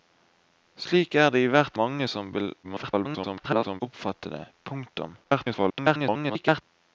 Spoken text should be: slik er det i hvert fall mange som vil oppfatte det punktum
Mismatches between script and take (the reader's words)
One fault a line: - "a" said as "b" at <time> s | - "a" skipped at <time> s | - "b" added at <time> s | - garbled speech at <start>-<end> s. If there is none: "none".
- "fall" skipped at 1.8 s
- garbled speech at 2.6-3.8 s
- garbled speech at 5.2-6.6 s